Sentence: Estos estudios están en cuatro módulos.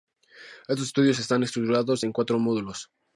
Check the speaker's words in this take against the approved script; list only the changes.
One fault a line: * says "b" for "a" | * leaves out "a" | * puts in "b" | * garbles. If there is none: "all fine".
* puts in "estructurados"